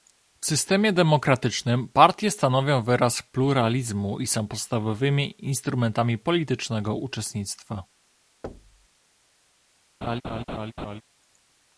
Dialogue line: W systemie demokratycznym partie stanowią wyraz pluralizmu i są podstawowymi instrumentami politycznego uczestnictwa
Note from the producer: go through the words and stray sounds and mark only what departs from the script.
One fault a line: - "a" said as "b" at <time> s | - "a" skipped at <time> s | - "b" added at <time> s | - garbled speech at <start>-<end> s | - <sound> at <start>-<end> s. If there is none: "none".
- thud at 8.4-8.9 s
- laugh at 10.0-11.0 s